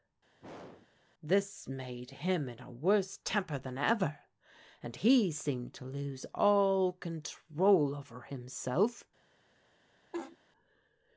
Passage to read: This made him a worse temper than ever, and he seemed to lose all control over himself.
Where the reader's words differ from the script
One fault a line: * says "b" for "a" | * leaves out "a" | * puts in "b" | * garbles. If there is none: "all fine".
* puts in "in"